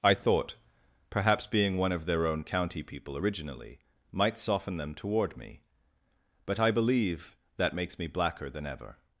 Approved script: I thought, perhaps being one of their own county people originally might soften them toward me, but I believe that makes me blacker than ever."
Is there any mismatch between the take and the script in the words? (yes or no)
no